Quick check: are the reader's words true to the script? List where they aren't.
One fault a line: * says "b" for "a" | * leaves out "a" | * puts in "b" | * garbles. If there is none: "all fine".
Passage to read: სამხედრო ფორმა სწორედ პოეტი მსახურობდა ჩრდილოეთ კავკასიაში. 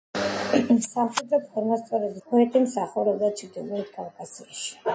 all fine